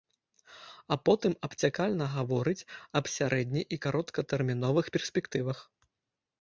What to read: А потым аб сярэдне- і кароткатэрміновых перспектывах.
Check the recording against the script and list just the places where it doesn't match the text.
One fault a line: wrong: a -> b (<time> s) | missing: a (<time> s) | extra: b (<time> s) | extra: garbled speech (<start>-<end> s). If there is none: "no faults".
extra: абцякальна гаворыць (1.5 s)